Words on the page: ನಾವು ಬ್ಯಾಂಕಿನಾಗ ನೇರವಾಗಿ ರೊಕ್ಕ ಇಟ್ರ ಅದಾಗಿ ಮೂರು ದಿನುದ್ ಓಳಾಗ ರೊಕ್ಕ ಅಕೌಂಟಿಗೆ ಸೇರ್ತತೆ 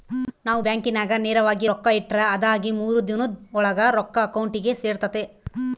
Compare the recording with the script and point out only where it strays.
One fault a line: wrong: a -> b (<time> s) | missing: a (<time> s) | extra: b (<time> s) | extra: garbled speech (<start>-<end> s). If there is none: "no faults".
no faults